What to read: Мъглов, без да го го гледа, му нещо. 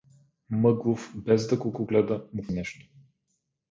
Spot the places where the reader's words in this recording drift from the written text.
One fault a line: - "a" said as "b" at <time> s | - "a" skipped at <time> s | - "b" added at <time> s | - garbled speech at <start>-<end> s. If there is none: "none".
none